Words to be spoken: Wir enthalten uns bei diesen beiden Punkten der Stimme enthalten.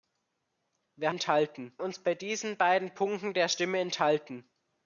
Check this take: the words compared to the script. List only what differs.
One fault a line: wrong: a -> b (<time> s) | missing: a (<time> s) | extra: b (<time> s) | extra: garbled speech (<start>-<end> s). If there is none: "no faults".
no faults